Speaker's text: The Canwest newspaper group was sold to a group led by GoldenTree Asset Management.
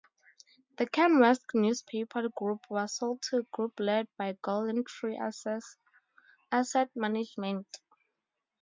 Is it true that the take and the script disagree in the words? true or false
false